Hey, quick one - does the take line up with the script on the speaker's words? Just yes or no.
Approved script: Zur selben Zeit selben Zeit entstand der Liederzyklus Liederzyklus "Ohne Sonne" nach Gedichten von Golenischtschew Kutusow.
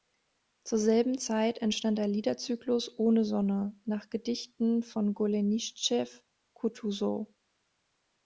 no